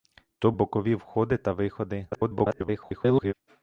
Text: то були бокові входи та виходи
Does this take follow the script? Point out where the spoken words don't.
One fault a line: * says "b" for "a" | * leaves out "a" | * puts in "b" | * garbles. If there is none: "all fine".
* leaves out "були"
* garbles